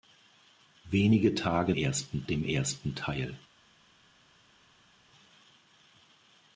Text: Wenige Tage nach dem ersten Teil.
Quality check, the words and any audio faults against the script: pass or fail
fail